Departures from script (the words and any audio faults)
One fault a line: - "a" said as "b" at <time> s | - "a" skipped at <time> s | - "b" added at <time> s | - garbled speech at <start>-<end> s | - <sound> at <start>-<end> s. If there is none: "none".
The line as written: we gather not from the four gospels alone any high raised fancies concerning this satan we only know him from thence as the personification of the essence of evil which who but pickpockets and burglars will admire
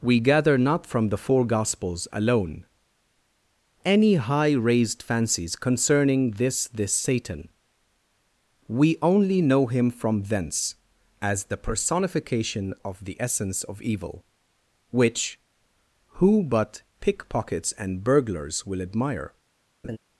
- "this" added at 6.7 s
- laugh at 19.8-20.0 s